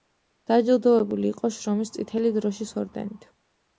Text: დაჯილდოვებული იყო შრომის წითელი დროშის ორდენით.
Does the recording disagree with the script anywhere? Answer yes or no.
no